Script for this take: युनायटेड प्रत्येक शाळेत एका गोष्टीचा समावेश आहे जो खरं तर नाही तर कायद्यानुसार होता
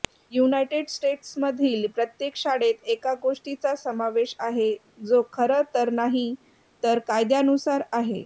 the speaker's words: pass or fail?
fail